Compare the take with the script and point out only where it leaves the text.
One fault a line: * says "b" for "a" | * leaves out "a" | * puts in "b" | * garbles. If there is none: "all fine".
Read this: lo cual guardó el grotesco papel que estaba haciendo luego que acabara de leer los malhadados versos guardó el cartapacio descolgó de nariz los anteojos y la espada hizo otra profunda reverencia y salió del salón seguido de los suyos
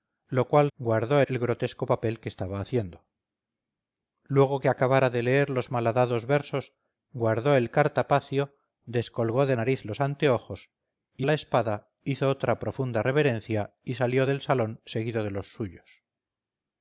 all fine